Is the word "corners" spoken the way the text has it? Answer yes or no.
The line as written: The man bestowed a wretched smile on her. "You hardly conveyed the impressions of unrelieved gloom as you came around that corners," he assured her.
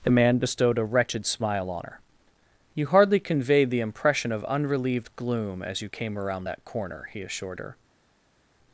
no